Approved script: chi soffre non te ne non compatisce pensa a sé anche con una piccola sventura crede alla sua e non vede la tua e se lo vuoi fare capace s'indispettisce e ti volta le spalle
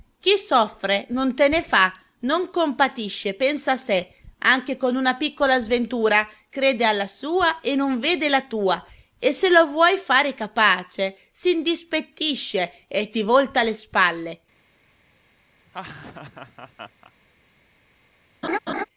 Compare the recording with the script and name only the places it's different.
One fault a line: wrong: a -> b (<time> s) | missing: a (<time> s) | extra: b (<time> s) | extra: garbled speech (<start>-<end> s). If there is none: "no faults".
extra: fa (1.6 s)